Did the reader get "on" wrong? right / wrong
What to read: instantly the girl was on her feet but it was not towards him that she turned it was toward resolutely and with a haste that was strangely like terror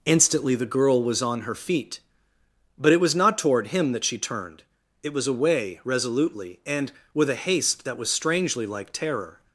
right